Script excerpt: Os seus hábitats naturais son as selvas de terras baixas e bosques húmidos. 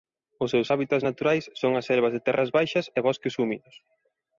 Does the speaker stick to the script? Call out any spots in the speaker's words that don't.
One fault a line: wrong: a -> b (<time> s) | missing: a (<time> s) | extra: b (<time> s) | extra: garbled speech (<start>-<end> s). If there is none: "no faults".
no faults